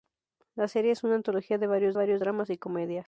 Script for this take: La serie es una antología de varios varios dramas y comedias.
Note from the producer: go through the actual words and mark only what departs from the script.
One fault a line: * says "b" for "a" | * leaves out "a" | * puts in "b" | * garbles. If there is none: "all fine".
all fine